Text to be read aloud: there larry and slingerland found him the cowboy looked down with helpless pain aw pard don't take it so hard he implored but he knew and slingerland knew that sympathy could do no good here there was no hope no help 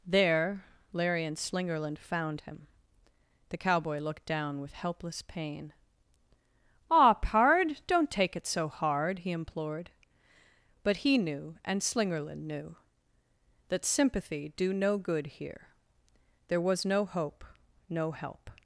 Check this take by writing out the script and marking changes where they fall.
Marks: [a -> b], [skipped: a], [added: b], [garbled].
there larry and slingerland found him the cowboy looked down with helpless pain aw pard don't take it so hard he implored but he knew and slingerland knew that sympathy [skipped: could] do no good here there was no hope no help